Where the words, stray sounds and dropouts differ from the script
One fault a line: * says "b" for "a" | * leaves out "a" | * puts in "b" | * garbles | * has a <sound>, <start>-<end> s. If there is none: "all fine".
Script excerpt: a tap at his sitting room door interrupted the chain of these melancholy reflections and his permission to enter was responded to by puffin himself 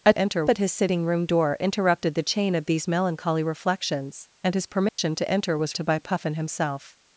* says "enter" for "tap"
* has a dropout, 4.9-5.0 s
* leaves out "responded"